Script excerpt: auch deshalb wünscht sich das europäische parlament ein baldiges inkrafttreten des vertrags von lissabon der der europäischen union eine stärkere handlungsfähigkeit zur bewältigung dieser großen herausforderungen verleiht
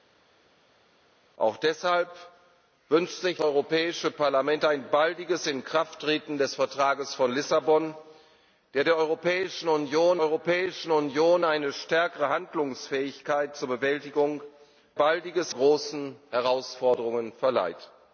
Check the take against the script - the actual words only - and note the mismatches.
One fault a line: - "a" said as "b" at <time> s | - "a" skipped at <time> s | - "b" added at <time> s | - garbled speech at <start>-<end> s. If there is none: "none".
- "das" skipped at 3.4 s
- "europäischen union" added at 10.2 s
- "dieser" said as "baldiges" at 15.0 s